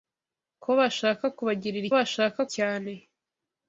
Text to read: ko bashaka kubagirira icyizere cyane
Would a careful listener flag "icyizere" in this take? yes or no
yes